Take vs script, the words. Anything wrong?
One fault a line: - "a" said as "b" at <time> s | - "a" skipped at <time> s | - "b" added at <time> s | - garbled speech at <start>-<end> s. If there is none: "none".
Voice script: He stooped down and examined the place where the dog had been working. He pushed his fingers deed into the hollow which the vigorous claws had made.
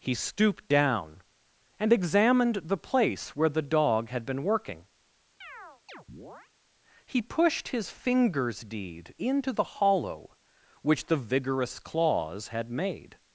none